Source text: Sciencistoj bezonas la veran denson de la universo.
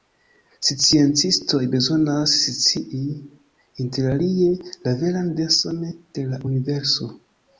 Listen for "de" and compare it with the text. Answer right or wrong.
right